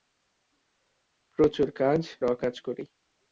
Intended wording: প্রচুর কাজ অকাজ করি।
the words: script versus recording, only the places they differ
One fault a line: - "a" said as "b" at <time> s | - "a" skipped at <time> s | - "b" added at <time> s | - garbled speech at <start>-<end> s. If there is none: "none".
none